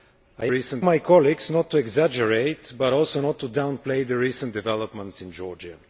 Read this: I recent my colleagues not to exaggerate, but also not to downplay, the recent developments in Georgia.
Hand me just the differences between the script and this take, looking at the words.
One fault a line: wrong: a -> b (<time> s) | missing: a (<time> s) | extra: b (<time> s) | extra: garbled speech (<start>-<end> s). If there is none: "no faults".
no faults